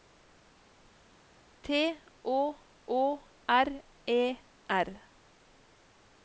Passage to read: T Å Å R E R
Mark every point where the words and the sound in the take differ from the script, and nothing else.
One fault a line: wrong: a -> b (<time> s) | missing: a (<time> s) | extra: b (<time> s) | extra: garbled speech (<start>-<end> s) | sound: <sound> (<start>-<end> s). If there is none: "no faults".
no faults